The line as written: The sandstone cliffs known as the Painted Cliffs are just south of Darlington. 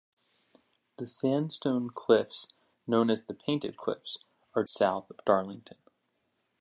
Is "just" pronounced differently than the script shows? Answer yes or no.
yes